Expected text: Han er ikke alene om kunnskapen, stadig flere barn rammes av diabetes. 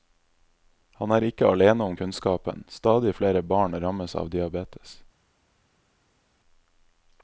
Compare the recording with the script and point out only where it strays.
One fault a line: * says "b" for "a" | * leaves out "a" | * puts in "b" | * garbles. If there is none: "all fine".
all fine